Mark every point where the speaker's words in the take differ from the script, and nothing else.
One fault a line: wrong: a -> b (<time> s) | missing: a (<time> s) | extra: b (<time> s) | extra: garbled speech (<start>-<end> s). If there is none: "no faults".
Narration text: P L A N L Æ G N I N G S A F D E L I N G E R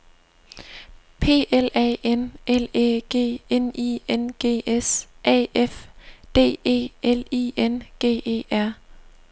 no faults